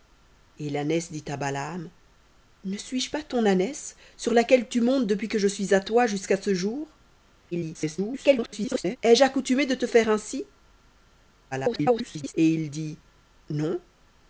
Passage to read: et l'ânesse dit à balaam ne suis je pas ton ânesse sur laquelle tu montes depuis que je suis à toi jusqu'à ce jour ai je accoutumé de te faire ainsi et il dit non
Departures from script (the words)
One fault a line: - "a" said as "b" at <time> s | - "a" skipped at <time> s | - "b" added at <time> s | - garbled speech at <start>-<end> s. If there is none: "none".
- garbled speech at 7.5-9.0 s
- garbled speech at 11.5-12.3 s